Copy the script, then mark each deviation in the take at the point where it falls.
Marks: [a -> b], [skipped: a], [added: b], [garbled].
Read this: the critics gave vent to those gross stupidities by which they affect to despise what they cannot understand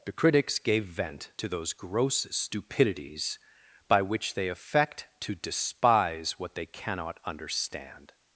the critics gave vent to those gross stupidities by which they affect to despise what they cannot understand